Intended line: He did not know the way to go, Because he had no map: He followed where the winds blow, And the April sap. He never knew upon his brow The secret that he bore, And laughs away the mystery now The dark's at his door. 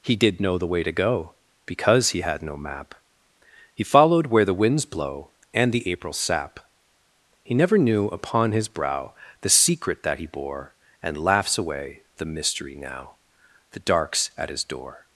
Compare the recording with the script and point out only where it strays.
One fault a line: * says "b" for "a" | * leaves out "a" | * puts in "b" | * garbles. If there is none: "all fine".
* leaves out "not"